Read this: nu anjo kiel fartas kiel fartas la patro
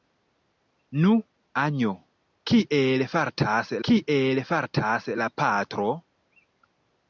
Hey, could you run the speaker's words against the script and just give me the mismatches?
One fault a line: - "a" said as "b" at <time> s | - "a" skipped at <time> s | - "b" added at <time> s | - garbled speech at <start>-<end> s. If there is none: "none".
none